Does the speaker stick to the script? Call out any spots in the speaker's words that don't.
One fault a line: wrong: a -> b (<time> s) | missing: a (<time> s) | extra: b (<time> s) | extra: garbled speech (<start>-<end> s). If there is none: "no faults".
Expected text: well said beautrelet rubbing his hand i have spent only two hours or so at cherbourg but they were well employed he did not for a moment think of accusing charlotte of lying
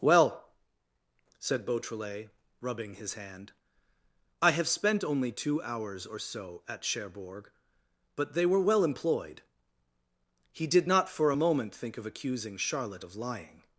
no faults